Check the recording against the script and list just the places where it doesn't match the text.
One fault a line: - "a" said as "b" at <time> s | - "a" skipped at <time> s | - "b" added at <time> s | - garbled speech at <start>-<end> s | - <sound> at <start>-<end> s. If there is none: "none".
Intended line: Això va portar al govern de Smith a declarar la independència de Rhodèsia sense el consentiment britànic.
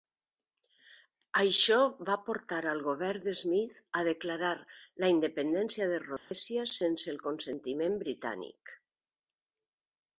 - dropout at 6.2-6.3 s